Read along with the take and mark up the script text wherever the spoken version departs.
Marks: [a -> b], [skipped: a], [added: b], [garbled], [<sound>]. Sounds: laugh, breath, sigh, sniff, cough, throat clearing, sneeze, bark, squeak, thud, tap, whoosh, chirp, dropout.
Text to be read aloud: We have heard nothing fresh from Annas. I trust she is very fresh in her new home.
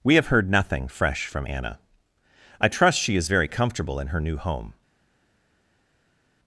We have heard nothing fresh from [Annas. -> Anna] I trust she is very [fresh -> comfortable] in her new home.